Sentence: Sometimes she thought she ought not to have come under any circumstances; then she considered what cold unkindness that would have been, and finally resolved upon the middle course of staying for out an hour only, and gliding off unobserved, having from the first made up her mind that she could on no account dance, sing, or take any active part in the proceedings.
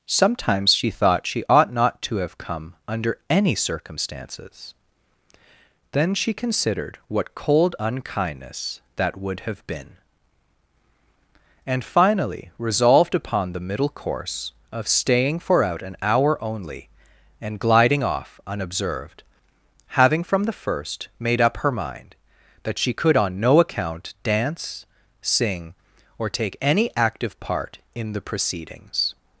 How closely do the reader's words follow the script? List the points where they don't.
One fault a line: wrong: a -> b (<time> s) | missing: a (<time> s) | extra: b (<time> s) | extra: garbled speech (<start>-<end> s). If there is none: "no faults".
no faults